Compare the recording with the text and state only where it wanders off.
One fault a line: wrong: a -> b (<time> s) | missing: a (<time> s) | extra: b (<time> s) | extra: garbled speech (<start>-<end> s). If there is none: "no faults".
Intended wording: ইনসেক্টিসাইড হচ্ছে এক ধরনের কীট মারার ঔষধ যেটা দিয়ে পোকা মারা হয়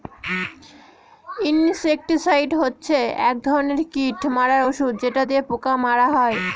no faults